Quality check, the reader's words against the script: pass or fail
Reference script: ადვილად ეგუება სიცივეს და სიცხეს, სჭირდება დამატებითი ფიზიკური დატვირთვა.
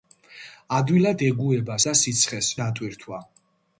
fail